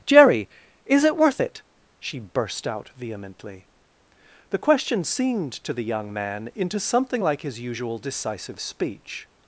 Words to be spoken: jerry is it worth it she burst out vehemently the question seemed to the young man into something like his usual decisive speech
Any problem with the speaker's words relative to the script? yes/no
no